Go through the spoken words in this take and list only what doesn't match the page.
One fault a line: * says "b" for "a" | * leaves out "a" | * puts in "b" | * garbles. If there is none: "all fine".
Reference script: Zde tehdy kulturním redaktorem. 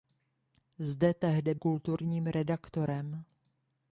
all fine